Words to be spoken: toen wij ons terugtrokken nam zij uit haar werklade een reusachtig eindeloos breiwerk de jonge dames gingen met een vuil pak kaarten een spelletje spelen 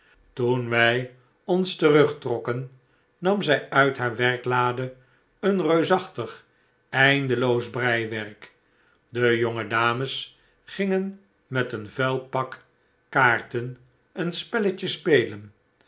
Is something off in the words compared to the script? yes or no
no